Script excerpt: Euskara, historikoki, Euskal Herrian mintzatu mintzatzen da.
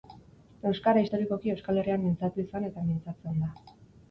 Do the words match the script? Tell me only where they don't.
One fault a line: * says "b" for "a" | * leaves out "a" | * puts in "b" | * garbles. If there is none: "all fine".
* puts in "izan eta"